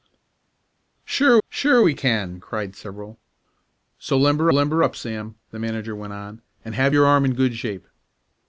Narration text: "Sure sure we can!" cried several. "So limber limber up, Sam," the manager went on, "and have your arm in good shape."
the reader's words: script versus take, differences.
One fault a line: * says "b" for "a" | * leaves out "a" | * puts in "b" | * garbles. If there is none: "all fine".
all fine